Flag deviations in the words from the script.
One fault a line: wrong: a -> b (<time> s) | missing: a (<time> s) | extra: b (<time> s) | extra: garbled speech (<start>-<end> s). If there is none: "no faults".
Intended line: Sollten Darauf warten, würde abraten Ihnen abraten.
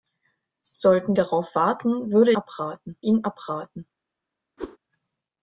no faults